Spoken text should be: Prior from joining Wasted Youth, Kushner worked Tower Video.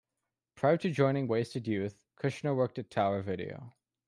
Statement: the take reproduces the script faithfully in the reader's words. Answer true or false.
false